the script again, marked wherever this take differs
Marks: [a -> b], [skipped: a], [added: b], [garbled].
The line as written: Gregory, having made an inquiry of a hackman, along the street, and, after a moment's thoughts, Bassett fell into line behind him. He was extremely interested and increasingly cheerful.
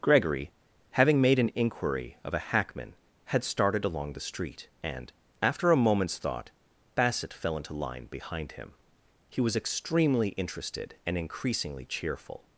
Gregory, having made an inquiry of a hackman, [added: had started] along the street, and, after a moment's [thoughts, -> thought] Bassett fell into line behind him. He was extremely interested and increasingly cheerful.